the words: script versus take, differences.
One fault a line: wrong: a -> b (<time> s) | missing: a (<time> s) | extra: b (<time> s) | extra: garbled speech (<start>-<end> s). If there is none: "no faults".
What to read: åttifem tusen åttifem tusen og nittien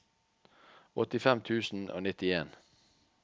missing: åttifem tusen (1.9 s)